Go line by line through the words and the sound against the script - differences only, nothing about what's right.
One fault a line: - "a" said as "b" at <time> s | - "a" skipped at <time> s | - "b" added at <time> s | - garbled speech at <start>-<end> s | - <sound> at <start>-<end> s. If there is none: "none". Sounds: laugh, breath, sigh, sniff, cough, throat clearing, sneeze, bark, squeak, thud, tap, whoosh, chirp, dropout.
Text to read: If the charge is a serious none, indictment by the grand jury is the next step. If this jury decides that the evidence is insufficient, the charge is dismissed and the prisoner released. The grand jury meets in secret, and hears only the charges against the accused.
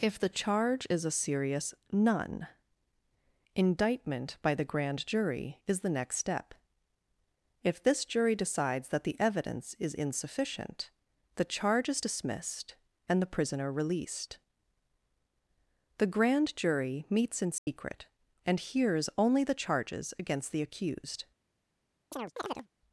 - dropout at 17.6-17.7 s
- chirp at 22.1-22.7 s